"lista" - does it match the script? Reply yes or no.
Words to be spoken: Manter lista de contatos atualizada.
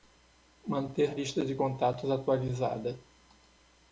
yes